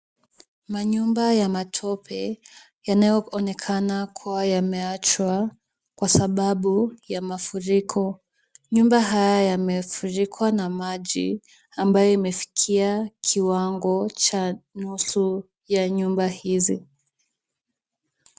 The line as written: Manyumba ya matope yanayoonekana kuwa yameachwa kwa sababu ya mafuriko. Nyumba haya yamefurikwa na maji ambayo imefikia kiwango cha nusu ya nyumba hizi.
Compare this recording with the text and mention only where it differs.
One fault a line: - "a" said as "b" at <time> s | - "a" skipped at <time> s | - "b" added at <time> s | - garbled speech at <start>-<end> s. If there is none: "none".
none